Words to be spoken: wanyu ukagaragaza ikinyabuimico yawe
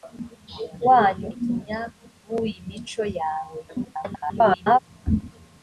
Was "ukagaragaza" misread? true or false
true